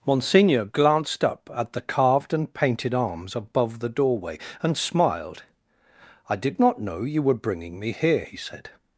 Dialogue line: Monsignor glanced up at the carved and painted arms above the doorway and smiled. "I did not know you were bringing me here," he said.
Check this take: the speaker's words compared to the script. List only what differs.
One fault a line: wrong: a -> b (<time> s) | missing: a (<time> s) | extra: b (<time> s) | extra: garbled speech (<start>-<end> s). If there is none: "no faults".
no faults